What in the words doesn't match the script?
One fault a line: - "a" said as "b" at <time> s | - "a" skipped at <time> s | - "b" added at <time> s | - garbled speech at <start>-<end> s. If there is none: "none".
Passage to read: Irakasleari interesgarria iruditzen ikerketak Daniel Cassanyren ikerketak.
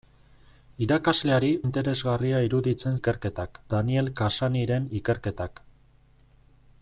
none